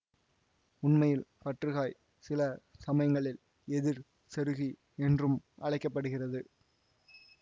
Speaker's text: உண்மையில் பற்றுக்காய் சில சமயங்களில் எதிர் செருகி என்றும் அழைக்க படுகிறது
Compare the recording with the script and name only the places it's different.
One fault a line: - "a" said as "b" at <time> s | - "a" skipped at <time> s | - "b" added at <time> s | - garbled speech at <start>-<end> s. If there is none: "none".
none